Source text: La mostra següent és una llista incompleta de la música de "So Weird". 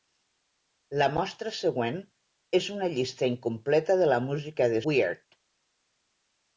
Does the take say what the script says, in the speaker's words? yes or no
no